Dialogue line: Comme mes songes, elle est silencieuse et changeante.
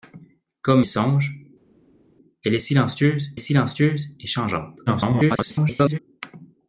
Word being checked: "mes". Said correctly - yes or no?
no